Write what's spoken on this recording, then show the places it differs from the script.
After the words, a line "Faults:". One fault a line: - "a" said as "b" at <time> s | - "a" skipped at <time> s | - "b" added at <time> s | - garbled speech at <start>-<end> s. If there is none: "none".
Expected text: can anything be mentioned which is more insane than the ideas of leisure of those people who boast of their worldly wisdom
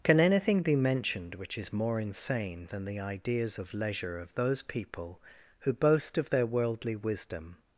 can anything be mentioned which is more insane than the ideas of leisure of those people who boast of their worldly wisdom
Faults:
none